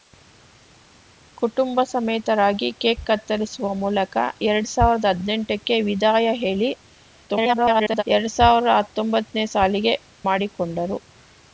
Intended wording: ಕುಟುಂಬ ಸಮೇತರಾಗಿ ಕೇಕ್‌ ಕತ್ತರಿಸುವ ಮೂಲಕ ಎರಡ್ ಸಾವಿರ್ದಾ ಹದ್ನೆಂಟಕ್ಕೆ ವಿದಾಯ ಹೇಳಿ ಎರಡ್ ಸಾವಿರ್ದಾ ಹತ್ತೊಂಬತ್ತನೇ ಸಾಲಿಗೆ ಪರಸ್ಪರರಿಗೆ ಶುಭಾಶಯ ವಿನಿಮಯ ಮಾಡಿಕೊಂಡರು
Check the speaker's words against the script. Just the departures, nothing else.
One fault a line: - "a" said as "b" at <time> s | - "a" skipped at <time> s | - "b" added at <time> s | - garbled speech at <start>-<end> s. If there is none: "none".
- garbled speech at 7.3-8.0 s
- "ಪರಸ್ಪರರಿಗೆ ಶುಭಾಶಯ ವಿನಿಮಯ" skipped at 9.9 s